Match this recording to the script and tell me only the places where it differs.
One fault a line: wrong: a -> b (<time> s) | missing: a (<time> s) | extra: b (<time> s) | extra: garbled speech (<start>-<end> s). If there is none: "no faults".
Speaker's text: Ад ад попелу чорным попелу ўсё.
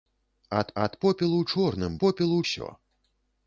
no faults